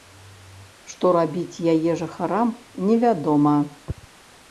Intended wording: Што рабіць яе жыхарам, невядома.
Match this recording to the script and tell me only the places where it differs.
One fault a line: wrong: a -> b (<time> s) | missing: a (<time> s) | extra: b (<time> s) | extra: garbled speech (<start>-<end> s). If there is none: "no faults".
no faults